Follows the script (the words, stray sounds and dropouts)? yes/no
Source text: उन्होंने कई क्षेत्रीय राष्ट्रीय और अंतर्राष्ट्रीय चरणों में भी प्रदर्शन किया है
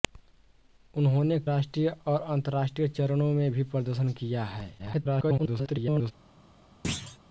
no